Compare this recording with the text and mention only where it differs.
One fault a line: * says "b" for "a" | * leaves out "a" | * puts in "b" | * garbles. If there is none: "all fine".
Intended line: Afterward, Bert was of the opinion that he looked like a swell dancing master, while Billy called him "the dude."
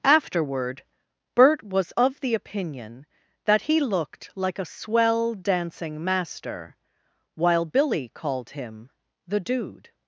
all fine